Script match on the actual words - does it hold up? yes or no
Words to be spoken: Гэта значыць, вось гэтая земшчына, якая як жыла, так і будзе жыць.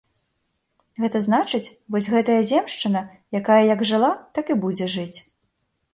yes